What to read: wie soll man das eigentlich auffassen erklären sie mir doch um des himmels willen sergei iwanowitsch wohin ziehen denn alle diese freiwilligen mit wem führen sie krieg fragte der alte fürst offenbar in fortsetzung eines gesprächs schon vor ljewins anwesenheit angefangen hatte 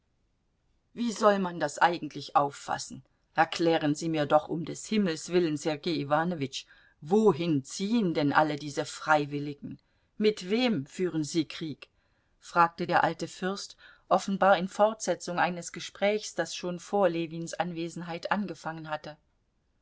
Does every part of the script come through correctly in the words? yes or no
no